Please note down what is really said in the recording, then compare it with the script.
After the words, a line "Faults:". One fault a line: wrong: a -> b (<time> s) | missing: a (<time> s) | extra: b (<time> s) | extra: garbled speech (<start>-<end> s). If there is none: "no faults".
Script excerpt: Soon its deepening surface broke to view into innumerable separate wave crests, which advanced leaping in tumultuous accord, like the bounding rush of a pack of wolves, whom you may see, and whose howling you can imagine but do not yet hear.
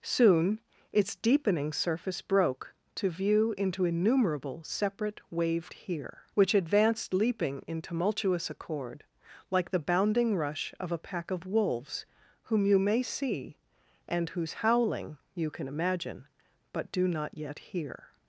Soon its deepening surface broke to view into innumerable separate wave hear, which advanced leaping in tumultuous accord, like the bounding rush of a pack of wolves, whom you may see, and whose howling you can imagine but do not yet hear.
Faults:
wrong: crests -> hear (5.7 s)